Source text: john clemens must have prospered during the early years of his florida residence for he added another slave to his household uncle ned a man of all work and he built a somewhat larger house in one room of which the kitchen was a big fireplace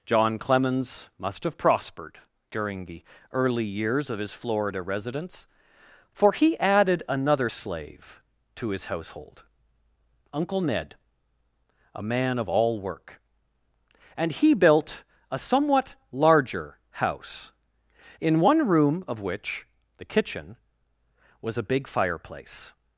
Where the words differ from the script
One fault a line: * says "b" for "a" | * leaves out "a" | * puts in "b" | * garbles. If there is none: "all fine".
all fine